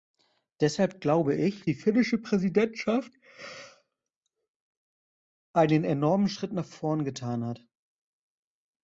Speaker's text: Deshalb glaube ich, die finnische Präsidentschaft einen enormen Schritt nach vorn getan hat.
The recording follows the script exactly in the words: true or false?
true